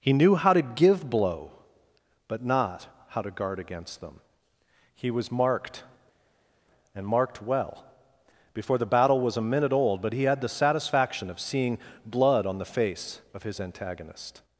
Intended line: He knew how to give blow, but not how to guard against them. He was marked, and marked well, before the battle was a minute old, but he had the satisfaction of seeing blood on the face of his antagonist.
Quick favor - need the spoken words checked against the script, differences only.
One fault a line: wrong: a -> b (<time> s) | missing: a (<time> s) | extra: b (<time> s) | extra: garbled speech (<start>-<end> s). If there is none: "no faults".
no faults